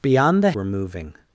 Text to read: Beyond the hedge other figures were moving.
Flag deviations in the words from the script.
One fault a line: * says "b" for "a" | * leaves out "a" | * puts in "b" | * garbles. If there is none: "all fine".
* leaves out "hedge other figures"